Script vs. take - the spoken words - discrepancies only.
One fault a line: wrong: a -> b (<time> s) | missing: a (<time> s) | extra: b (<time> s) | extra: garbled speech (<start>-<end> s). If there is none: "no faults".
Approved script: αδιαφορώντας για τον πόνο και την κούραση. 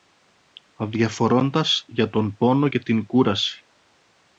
no faults